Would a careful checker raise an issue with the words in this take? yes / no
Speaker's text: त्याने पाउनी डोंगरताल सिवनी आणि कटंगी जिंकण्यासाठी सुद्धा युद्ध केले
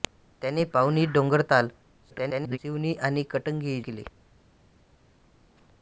yes